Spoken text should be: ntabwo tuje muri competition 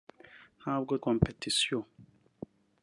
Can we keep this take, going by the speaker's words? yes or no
no